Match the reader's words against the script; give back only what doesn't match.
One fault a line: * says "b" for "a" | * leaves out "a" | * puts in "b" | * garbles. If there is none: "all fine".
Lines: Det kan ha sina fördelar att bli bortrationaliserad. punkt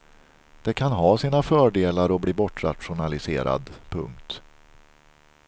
all fine